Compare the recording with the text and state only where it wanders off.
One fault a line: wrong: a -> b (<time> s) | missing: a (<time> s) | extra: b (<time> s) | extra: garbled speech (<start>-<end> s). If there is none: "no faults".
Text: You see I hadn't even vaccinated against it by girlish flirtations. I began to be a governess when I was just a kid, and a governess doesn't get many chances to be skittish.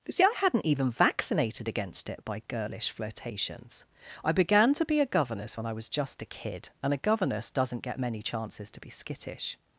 no faults